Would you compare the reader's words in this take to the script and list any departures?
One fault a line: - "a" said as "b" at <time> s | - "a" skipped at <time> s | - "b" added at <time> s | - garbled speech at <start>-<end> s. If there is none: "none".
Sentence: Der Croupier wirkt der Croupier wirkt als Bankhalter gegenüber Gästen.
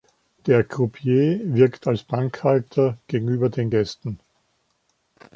- "der Croupier wirkt" skipped at 1.9 s
- "den" added at 3.5 s